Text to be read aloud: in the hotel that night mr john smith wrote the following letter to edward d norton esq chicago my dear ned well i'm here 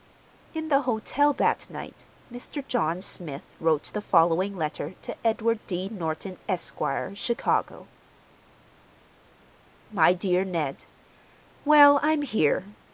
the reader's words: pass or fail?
pass